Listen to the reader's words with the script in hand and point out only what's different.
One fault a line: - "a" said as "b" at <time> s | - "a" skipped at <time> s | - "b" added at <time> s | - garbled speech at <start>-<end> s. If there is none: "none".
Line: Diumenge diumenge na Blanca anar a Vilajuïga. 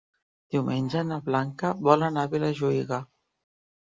- "diumenge" skipped at 1.0 s
- "vol" added at 1.9 s